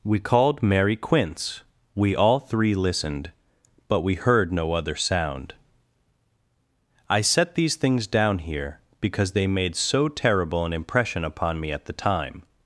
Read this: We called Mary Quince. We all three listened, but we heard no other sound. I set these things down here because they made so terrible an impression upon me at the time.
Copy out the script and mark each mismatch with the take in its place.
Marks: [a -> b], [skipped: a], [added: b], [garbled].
We called Mary Quince. We all three listened, but we heard no other sound. I set these things down here because they made so terrible an impression upon me at the time.